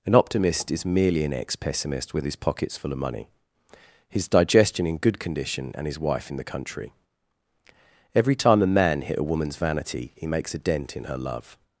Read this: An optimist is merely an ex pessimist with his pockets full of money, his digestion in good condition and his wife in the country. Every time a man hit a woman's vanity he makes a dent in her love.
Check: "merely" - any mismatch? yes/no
no